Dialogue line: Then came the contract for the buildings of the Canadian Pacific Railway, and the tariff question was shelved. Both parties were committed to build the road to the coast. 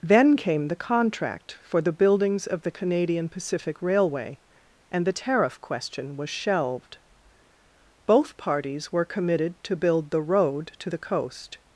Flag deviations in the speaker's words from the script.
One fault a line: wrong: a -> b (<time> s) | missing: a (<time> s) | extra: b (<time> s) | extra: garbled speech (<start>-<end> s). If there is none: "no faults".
no faults